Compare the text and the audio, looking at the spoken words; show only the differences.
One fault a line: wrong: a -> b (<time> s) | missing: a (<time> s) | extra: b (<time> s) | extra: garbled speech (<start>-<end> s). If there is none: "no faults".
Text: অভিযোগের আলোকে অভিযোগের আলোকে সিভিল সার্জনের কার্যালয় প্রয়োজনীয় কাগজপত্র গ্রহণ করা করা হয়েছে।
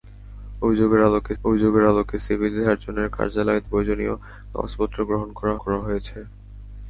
no faults